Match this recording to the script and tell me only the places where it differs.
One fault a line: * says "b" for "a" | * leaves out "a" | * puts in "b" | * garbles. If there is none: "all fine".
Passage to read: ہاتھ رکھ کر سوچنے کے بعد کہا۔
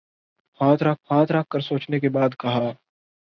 * puts in "ہاتھ رکھ"